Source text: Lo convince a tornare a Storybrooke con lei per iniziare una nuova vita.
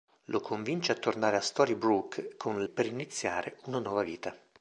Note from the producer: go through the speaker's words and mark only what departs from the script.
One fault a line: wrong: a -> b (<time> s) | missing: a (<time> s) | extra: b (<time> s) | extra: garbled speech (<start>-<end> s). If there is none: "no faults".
missing: lei (2.6 s)